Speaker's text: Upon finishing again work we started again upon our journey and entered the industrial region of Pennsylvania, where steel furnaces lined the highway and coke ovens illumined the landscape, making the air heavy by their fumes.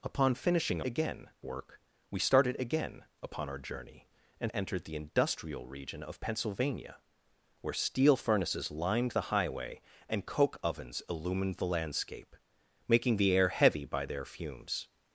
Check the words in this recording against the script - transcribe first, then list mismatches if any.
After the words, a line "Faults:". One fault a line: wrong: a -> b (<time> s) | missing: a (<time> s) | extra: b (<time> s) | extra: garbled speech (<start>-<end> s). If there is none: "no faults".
Upon finishing again work we started again upon our journey and entered the industrial region of Pennsylvania, where steel furnaces lined the highway and coke ovens illumined the landscape, making the air heavy by their fumes.
Faults:
no faults